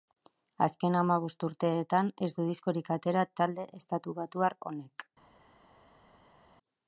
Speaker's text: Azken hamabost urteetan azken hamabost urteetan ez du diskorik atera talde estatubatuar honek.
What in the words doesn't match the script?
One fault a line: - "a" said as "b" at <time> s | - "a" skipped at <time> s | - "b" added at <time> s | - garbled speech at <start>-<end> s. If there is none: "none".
- "azken hamabost urteetan" skipped at 2.1 s